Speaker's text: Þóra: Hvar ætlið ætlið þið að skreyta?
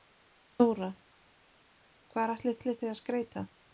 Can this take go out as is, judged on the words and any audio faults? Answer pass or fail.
pass